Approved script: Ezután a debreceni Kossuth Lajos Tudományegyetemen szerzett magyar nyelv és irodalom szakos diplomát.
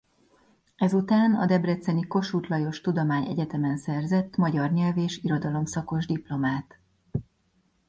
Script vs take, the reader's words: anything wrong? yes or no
no